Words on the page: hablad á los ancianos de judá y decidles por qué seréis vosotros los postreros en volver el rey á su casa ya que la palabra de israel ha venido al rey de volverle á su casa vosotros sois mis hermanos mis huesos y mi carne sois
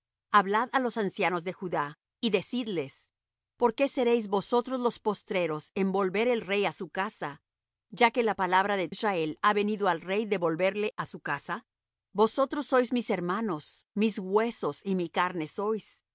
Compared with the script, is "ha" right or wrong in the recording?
right